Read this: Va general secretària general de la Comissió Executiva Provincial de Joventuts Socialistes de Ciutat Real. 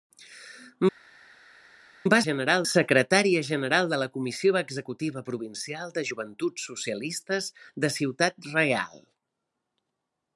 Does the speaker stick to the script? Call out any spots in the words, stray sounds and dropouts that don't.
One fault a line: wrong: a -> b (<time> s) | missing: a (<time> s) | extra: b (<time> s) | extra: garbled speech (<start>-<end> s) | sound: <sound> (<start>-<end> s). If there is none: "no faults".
no faults